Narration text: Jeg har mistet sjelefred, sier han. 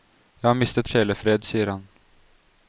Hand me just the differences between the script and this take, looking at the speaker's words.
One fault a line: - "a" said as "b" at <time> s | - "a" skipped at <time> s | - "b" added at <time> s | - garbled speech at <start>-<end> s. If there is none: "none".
none